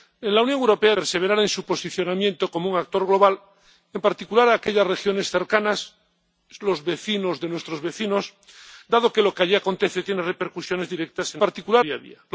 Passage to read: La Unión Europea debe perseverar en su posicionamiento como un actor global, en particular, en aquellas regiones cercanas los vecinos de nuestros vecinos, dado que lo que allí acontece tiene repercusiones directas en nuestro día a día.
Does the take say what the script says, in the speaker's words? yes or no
no